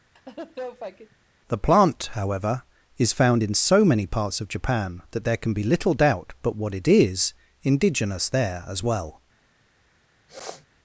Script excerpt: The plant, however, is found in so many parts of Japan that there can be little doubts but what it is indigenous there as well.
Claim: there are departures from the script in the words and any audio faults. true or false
true